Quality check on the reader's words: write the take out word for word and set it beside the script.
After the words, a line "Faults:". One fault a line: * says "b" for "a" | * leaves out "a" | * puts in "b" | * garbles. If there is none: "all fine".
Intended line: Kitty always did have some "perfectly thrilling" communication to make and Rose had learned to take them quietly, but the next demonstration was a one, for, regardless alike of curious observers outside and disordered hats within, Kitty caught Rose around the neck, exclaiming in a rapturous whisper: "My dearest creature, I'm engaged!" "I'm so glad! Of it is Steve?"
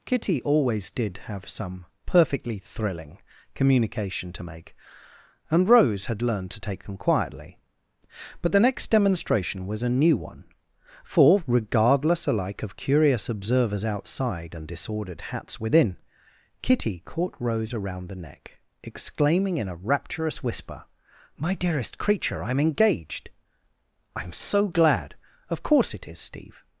Kitty always did have some "perfectly thrilling" communication to make and Rose had learned to take them quietly, but the next demonstration was a new one, for, regardless alike of curious observers outside and disordered hats within, Kitty caught Rose around the neck, exclaiming in a rapturous whisper: "My dearest creature, I'm engaged!" "I'm so glad! Of course it is Steve?"
Faults:
* puts in "new"
* puts in "course"